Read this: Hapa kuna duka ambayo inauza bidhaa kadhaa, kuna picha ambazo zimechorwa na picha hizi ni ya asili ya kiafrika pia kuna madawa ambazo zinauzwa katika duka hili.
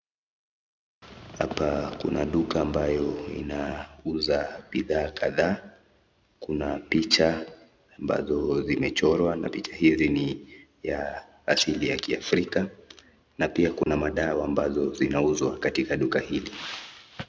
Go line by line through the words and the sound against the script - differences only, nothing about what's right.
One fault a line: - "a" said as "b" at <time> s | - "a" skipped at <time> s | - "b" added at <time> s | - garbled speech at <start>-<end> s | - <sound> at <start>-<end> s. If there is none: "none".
- "na" added at 13.4 s
- dropout at 13.8-13.9 s